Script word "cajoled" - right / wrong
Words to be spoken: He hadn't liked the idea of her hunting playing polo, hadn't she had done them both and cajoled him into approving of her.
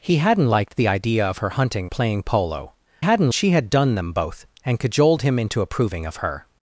right